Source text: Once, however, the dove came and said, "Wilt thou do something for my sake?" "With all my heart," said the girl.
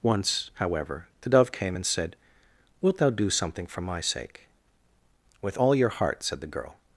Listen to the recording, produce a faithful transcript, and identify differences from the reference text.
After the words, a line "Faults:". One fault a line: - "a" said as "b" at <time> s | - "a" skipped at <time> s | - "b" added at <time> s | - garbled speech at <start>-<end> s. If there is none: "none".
Once, however, the dove came and said, "Wilt thou do something for my sake?" "With all your heart," said the girl.
Faults:
- "my" said as "your" at 5.7 s